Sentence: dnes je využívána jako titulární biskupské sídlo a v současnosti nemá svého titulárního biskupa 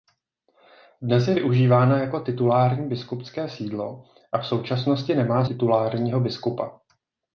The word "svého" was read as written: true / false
false